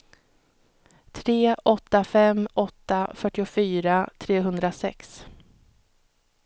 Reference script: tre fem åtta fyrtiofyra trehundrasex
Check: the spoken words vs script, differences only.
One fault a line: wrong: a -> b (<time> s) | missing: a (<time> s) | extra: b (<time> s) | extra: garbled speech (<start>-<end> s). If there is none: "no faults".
extra: åtta (1.6 s)